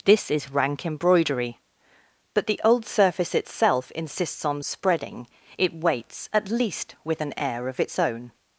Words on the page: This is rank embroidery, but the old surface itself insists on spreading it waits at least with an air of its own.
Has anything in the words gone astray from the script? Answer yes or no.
no